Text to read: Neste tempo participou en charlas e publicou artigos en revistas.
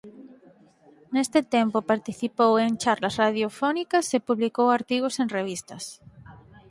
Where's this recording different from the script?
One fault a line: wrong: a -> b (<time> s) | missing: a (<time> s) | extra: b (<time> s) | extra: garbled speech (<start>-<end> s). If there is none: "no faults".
extra: radiofónicas (3.2 s)